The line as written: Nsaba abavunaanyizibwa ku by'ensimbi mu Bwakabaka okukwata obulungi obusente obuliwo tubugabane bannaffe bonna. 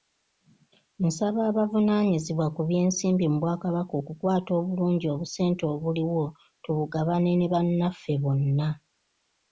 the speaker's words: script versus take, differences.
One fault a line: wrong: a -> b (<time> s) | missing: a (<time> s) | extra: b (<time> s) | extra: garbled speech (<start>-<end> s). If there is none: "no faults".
extra: ne (7.3 s)